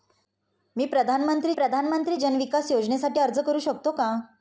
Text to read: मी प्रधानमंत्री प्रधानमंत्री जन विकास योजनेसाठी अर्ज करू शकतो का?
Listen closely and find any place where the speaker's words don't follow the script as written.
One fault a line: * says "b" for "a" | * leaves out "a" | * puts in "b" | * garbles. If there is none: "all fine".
all fine